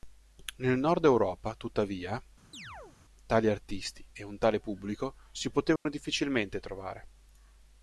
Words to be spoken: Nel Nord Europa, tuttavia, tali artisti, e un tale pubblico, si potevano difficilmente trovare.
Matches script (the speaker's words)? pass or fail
pass